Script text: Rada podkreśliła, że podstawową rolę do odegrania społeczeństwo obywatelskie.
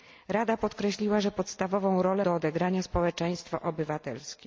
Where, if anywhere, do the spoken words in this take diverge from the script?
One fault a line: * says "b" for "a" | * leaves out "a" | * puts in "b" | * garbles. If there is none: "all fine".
all fine